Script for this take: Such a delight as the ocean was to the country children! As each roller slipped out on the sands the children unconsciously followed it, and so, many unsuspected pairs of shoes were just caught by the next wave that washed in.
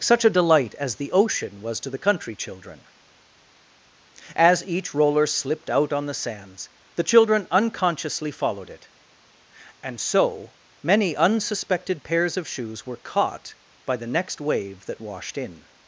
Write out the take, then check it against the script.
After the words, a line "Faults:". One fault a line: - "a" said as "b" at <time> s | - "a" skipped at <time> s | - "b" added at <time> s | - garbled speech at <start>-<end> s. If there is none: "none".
Such a delight as the ocean was to the country children! As each roller slipped out on the sands the children unconsciously followed it, and so, many unsuspected pairs of shoes were caught by the next wave that washed in.
Faults:
- "just" skipped at 13.0 s